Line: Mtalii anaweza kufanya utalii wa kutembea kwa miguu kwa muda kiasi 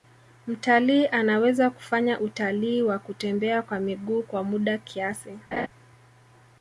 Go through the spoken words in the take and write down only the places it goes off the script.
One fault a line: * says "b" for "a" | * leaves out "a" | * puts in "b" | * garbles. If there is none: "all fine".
all fine